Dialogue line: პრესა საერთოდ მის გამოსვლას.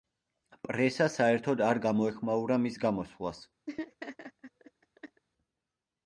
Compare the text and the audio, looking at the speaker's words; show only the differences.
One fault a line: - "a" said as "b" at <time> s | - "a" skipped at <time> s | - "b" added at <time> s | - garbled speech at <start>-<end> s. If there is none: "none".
- "არ გამოეხმაურა" added at 1.7 s